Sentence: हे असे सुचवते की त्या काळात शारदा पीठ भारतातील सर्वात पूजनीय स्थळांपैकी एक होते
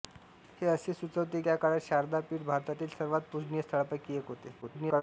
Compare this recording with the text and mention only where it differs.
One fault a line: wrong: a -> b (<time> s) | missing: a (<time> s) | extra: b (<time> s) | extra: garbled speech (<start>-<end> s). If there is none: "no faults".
missing: की (1.4 s)
extra: garbled speech (4.6-5.0 s)